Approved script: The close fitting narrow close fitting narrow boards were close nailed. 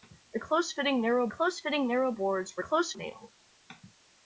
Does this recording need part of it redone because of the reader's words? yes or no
no